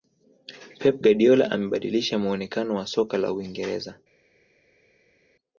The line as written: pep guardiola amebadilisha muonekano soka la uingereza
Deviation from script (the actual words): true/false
true